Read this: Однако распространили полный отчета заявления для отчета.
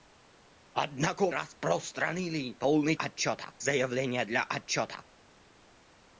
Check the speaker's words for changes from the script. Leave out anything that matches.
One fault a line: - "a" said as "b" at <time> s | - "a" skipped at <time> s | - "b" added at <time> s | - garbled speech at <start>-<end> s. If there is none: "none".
none